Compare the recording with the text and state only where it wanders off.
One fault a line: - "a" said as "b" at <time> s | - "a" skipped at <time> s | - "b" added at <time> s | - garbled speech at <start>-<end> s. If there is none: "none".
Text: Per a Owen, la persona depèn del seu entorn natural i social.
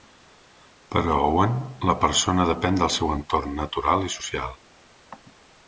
none